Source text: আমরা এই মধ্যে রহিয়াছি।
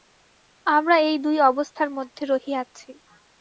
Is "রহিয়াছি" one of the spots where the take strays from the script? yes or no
no